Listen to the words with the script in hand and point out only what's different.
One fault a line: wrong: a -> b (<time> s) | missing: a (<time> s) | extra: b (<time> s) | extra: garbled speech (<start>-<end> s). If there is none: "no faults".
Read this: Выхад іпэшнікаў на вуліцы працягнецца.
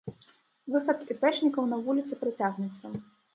no faults